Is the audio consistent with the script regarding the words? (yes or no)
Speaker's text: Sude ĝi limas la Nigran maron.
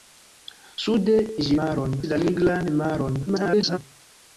no